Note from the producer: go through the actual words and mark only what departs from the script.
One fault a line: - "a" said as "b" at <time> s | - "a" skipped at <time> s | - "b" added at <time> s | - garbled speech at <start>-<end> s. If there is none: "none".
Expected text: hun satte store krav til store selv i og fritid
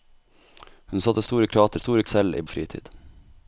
none